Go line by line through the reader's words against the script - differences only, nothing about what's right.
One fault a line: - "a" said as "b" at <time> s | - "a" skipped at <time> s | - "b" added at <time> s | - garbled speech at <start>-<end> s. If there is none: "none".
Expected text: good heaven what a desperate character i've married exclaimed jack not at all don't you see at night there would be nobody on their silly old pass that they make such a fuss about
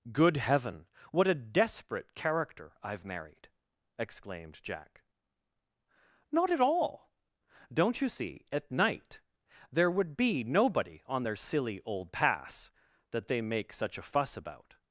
none